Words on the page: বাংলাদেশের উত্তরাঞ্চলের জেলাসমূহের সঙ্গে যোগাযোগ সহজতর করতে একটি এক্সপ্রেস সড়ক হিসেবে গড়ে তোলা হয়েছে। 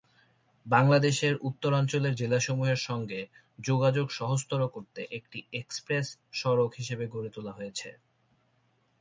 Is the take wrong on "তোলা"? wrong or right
right